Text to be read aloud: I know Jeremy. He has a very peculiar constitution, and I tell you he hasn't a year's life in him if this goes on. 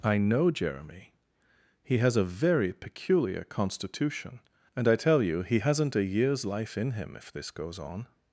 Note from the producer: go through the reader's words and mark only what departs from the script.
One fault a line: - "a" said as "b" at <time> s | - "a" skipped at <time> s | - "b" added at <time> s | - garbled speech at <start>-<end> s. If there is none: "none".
none